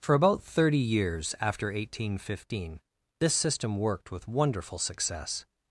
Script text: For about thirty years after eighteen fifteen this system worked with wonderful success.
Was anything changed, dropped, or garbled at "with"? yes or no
no